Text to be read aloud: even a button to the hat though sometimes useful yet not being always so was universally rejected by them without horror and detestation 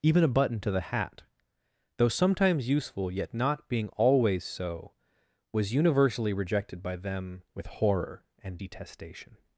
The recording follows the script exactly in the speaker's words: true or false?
false